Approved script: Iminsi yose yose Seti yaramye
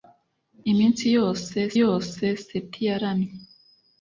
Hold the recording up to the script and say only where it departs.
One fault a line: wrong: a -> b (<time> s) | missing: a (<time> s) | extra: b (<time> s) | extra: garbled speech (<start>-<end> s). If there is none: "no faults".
no faults